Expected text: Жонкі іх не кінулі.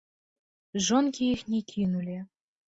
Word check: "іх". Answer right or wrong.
right